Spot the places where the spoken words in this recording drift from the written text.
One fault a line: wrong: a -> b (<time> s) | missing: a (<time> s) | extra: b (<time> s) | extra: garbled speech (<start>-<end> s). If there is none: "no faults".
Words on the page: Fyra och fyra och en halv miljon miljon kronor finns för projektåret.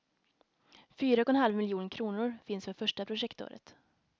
missing: fyra och (1.3 s)
missing: miljon (1.9 s)
extra: första (2.7 s)